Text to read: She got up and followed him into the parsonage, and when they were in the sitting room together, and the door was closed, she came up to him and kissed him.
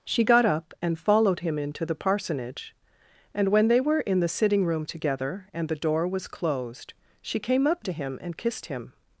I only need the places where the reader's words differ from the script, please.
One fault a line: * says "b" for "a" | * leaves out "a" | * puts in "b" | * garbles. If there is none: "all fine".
all fine